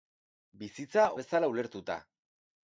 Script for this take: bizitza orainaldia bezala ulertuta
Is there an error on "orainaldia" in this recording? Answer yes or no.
yes